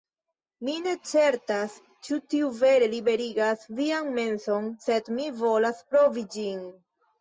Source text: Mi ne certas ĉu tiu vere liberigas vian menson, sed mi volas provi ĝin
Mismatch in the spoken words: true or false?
false